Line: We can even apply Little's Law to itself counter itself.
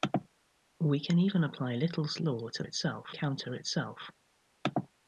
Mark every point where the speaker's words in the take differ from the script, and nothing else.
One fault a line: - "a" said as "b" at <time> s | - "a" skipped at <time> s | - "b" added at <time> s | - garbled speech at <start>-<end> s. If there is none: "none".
none